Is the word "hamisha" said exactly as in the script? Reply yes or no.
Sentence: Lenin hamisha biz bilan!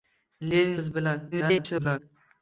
no